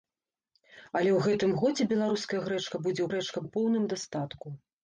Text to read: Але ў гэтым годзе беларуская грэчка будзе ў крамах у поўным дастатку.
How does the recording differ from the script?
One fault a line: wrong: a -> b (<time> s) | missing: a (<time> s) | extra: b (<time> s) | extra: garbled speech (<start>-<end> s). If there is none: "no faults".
wrong: крамах -> грэчка (3.1 s)